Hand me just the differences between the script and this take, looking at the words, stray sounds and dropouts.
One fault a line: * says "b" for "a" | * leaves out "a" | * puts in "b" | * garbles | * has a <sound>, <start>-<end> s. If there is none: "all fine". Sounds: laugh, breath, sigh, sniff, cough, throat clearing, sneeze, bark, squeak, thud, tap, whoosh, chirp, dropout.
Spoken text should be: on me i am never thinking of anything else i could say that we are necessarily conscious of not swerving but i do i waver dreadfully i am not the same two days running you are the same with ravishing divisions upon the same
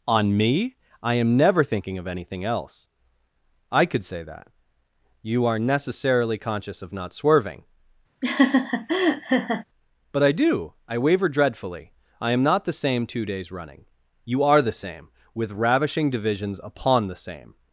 * says "you" for "we"
* has a laugh, 8.2-9.6 s